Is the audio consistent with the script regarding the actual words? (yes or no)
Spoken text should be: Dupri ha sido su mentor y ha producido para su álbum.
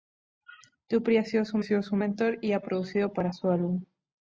no